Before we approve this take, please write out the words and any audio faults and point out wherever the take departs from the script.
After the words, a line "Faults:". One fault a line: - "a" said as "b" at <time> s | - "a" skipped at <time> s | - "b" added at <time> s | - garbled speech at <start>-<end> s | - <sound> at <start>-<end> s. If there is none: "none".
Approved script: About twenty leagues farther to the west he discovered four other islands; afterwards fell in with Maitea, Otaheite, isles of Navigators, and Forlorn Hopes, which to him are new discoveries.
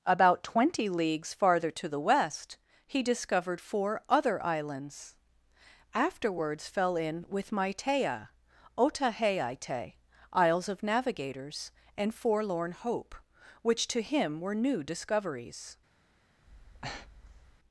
About twenty leagues farther to the west he discovered four other islands; afterwards fell in with Maitea, Otaheite, isles of Navigators, and Forlorn Hope, which to him were new discoveries.
Faults:
- "Hopes" said as "Hope" at 12.7 s
- "are" said as "were" at 14.4 s
- breath at 16.4-17.6 s